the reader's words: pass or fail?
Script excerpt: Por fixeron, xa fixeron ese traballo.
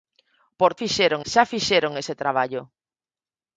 pass